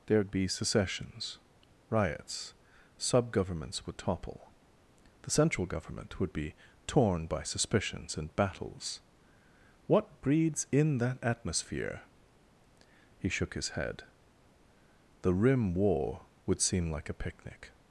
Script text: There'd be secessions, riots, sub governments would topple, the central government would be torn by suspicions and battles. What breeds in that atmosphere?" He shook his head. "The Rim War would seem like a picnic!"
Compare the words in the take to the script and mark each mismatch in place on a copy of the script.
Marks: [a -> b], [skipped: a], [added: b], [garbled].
There'd be secessions, riots, sub governments would topple, the central government would be torn by suspicions and battles. What breeds in that atmosphere?" He shook his head. "The Rim War would seem like a picnic!"